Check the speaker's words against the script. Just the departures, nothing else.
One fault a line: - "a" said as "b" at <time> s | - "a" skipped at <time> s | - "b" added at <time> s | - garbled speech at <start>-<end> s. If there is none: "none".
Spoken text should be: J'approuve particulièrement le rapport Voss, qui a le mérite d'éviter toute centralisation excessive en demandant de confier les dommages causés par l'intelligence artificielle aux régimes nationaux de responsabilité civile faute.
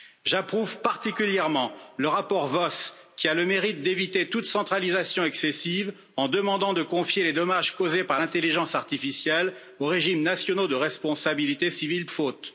none